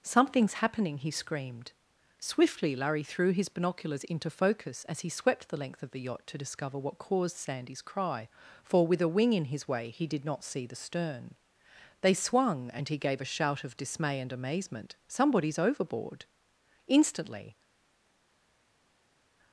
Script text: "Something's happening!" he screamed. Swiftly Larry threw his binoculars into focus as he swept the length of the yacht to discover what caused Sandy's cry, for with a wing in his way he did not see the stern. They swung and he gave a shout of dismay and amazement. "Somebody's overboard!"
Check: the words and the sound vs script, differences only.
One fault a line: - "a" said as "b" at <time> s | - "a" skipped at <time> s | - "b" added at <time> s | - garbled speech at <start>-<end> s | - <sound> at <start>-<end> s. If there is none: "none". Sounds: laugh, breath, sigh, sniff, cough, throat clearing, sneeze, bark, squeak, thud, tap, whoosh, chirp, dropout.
- "Instantly" added at 16.9 s